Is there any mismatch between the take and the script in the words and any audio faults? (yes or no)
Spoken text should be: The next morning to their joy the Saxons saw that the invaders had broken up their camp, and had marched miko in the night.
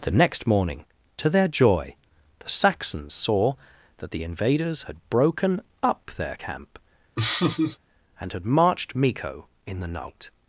yes